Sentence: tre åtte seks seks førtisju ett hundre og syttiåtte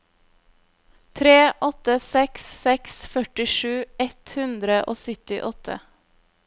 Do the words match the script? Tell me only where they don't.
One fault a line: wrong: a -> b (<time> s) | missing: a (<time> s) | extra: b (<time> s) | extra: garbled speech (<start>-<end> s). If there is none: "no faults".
no faults